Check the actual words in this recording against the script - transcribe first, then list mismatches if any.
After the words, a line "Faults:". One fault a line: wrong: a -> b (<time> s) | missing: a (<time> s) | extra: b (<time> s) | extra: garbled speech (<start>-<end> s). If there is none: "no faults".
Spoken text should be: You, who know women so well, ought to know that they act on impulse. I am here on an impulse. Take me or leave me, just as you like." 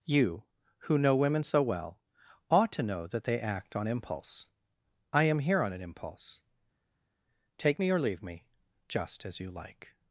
You, who know women so well, ought to know that they act on impulse. I am here on an impulse. Take me or leave me, just as you like."
Faults:
no faults